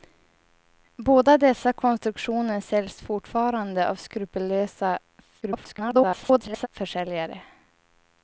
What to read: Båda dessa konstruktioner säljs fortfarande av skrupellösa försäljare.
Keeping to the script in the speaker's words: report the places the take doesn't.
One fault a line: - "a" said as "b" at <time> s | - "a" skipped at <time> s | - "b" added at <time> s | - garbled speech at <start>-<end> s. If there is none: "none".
- garbled speech at 5.4-6.7 s